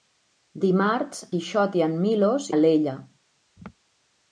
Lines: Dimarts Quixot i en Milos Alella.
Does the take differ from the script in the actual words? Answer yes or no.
no